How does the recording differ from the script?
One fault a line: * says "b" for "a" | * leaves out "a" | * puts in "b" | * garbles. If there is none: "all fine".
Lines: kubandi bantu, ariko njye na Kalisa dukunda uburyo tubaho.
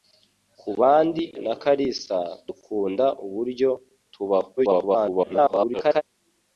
* leaves out "bantu ariko njye"
* garbles